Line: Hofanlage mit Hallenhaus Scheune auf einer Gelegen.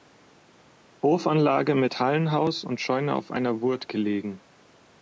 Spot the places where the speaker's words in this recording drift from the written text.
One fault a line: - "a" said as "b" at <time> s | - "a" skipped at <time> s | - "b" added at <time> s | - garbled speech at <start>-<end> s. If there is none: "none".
- "und" added at 2.6 s
- "Wurt" added at 3.6 s